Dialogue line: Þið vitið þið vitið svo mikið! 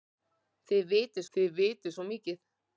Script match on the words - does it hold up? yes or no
yes